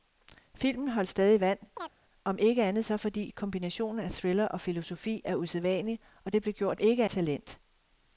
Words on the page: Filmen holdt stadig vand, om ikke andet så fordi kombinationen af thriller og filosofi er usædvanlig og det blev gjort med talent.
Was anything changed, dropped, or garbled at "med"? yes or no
yes